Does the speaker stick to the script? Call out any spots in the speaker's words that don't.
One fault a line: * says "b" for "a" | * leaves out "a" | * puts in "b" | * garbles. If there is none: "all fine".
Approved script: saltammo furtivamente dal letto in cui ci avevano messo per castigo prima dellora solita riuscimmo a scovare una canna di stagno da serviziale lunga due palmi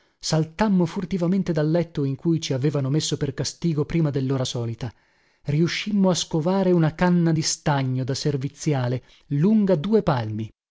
all fine